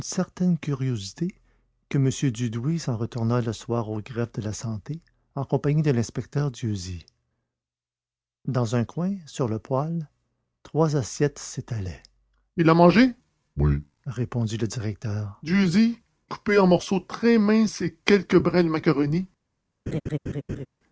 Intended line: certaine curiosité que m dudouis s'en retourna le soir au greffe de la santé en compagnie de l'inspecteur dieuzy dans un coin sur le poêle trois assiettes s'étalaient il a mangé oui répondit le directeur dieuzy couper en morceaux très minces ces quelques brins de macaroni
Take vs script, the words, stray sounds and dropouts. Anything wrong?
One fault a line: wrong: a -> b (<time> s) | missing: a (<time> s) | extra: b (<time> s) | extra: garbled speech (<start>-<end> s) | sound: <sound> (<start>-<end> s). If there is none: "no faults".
sound: laugh (19.9-20.7 s)